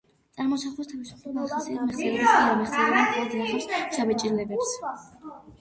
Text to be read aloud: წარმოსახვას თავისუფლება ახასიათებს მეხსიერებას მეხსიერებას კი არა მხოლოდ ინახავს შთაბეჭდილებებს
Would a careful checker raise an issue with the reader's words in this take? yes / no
yes